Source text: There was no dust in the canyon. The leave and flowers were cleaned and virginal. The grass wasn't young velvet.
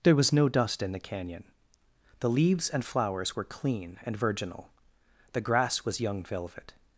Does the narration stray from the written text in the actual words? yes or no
yes